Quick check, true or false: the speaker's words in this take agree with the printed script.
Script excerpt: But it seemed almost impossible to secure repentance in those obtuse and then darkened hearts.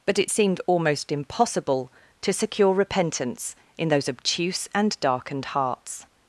false